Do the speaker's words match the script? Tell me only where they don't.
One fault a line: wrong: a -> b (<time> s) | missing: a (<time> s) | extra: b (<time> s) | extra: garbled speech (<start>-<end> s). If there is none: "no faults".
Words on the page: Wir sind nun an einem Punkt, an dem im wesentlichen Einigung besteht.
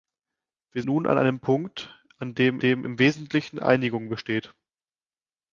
missing: sind (0.8 s)
extra: dem (2.6 s)